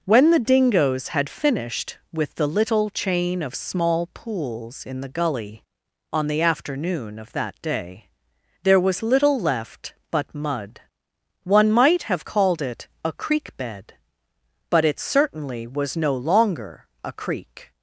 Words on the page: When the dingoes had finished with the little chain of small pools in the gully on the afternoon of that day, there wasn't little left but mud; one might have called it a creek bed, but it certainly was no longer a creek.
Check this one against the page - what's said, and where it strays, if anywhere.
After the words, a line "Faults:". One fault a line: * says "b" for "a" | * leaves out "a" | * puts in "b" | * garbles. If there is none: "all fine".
When the dingoes had finished with the little chain of small pools in the gully on the afternoon of that day, there was little left but mud; one might have called it a creek bed, but it certainly was no longer a creek.
Faults:
* says "was" for "wasn't"